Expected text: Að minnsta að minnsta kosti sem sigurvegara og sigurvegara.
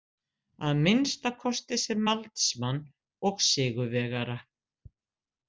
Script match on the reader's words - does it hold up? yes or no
no